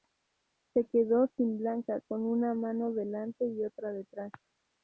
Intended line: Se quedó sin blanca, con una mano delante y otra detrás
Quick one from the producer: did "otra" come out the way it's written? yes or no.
yes